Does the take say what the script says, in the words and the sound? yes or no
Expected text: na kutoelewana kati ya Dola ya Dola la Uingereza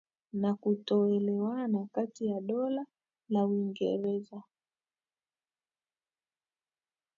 no